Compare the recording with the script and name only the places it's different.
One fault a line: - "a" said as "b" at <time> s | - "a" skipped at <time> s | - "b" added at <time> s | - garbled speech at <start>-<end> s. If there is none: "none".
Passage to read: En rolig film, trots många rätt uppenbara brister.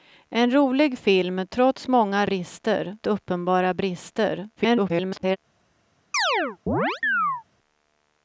- "rätt" said as "brister" at 2.2 s
- garbled speech at 4.6-5.4 s